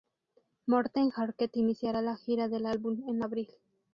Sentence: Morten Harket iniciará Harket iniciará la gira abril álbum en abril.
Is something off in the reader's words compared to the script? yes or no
yes